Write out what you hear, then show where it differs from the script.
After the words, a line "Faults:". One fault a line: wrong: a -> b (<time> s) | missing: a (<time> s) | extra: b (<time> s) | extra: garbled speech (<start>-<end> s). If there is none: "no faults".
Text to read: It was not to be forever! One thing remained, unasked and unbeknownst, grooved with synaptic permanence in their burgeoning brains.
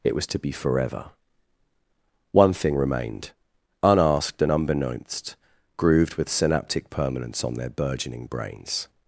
It was to be forever! One thing remained, unasked and unbeknownst, grooved with synaptic permanence on their burgeoning brains.
Faults:
missing: not (0.3 s)
wrong: in -> on (7.4 s)